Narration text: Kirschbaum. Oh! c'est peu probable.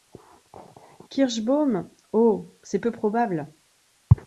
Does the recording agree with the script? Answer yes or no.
yes